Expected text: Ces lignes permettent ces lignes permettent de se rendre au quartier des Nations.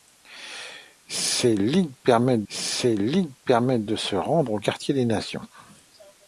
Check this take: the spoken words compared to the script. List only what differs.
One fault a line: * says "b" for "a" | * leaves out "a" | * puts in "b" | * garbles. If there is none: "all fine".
all fine